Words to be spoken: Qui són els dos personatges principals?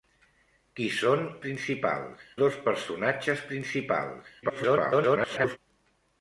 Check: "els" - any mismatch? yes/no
yes